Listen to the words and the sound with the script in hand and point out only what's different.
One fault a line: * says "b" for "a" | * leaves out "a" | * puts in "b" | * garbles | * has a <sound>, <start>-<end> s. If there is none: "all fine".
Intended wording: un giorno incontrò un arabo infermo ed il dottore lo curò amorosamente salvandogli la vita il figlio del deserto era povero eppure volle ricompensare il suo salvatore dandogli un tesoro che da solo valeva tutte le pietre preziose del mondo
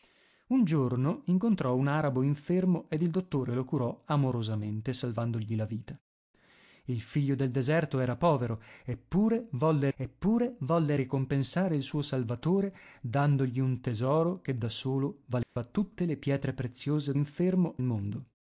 * puts in "eppure volle"
* has a dropout, 15.4-15.6 s
* says "infermo" for "del"